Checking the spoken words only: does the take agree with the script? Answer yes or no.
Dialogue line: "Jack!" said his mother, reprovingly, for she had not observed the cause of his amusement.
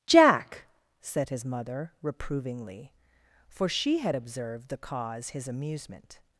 no